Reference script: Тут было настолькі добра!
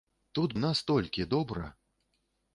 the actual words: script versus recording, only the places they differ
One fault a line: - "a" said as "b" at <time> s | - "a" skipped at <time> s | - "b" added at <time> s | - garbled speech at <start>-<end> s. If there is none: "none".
- "было" skipped at 0.6 s